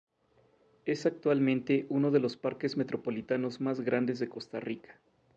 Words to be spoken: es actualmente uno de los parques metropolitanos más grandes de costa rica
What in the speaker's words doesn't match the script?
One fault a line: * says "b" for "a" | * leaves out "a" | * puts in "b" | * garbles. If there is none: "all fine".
all fine